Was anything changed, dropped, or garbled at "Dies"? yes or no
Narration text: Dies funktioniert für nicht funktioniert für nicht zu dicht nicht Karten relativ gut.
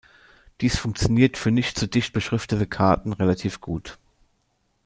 no